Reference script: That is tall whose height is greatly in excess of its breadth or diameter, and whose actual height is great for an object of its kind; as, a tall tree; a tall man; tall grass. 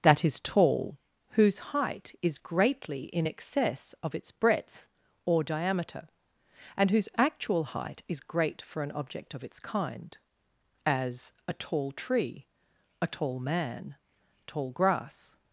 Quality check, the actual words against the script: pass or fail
pass